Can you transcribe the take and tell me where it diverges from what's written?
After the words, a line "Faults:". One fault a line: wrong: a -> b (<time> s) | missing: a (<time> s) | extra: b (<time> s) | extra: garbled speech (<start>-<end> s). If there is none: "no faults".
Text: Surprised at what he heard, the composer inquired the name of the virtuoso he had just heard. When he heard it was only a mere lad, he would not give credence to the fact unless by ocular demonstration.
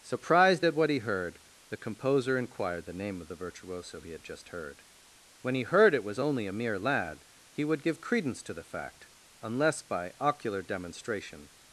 Surprised at what he heard, the composer inquired the name of the virtuoso he had just heard. When he heard it was only a mere lad, he would give credence to the fact unless by ocular demonstration.
Faults:
missing: not (7.8 s)